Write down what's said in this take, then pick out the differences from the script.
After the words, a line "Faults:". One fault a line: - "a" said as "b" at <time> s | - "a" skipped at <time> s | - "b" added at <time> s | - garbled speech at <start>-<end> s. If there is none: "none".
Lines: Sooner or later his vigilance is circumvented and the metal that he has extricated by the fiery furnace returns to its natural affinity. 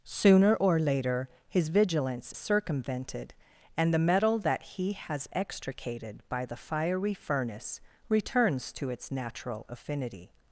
Sooner or later his vigilance circumvented and the metal that he has extricated by the fiery furnace returns to its natural affinity.
Faults:
- "is" skipped at 2.3 s